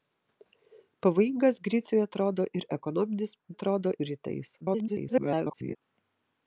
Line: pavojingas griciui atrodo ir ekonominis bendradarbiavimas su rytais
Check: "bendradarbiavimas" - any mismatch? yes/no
yes